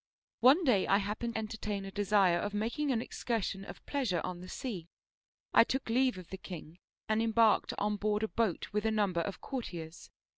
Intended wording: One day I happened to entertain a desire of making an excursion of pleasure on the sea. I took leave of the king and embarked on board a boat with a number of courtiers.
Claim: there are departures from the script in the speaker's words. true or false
true